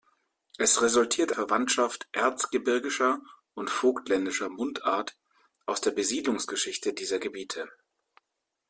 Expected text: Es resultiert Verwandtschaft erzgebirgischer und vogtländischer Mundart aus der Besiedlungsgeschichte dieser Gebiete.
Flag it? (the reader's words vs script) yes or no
no